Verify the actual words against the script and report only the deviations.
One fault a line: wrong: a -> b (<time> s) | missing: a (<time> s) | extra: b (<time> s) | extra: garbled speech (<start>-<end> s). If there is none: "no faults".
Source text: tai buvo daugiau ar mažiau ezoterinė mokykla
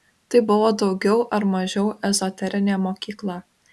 no faults